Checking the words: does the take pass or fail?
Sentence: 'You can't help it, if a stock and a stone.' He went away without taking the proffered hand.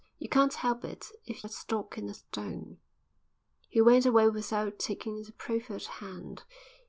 pass